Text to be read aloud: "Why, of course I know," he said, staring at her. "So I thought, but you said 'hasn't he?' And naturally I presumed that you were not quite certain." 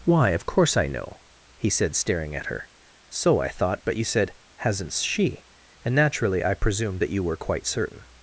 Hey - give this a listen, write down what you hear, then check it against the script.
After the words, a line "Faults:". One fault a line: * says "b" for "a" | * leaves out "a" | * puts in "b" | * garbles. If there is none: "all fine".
"Why, of course I know," he said, staring at her. "So I thought, but you said 'hasn't she?' And naturally I presumed that you were quite certain."
Faults:
* says "she" for "he"
* leaves out "not"